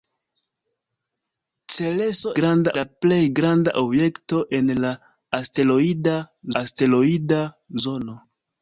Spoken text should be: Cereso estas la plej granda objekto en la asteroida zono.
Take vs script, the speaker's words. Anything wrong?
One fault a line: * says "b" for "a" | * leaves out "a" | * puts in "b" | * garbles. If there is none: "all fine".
* says "granda" for "estas"
* puts in "asteroida"